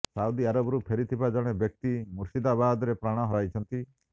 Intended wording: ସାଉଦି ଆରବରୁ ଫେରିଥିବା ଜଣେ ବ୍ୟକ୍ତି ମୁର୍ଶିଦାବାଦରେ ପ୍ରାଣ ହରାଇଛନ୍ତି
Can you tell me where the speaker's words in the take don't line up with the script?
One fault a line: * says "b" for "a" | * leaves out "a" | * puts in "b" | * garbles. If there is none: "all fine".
all fine